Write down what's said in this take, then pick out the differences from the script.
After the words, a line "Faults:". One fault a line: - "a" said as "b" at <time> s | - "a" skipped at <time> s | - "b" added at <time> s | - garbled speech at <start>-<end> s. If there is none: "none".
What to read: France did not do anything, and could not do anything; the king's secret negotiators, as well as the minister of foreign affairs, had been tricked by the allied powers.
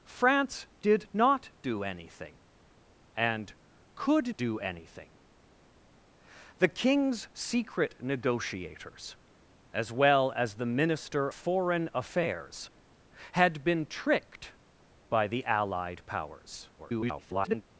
France did not do anything, and could do anything; the king's secret negotiators, as well as the minister foreign affairs, had been tricked by the allied powers. [garbled]
Faults:
- "not" skipped at 4.3 s
- "of" skipped at 11.3 s
- garbled speech at 16.8-17.6 s